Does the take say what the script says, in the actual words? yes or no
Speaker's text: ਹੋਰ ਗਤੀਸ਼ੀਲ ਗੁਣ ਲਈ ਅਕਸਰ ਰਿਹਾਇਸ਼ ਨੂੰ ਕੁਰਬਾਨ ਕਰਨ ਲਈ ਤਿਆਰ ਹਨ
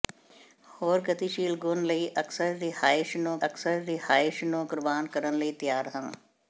no